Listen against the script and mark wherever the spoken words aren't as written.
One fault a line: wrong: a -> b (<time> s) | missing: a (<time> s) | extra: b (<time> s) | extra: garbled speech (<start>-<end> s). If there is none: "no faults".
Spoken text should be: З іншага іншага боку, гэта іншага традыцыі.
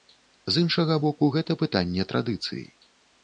missing: іншага (0.9 s)
wrong: іншага -> пытанне (1.6 s)